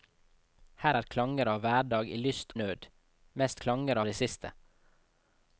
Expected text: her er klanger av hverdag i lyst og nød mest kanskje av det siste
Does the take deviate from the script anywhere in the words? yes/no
yes